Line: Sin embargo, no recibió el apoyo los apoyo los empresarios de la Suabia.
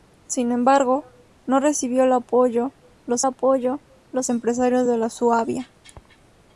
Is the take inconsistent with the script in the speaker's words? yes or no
no